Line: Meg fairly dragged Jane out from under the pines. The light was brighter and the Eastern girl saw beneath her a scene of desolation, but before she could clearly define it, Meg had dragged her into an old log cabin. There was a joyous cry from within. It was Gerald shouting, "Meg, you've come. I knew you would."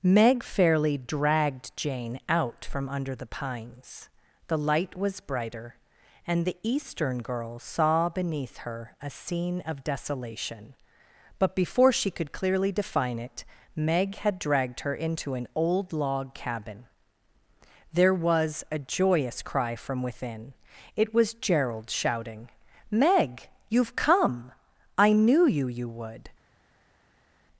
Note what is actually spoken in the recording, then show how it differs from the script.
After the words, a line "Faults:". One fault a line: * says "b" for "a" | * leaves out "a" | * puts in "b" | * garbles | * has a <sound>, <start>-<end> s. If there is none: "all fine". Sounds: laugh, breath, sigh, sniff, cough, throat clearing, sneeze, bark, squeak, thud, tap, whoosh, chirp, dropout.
Meg fairly dragged Jane out from under the pines. The light was brighter and the Eastern girl saw beneath her a scene of desolation, but before she could clearly define it, Meg had dragged her into an old log cabin. There was a joyous cry from within. It was Gerald shouting, "Meg, you've come. I knew you you would."
Faults:
* puts in "you"